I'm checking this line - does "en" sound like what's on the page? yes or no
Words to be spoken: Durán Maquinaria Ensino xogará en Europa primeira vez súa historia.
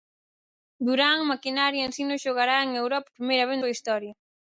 yes